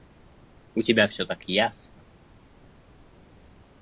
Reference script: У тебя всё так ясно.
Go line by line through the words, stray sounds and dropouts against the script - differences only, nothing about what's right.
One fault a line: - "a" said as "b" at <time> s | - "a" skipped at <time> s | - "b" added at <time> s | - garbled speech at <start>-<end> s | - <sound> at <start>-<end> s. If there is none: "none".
none